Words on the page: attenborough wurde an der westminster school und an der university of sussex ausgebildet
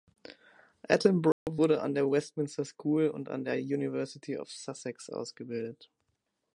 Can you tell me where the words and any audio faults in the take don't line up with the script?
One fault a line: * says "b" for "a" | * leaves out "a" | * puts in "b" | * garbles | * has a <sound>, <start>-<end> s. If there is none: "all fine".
* has a dropout, 1.3-1.5 s